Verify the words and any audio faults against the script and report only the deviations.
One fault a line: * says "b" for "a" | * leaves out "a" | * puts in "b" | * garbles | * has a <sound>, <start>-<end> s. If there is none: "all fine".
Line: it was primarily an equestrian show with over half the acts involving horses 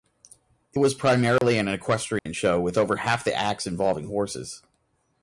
* has a dropout, 1.4-1.4 s
* has a dropout, 2.2-2.3 s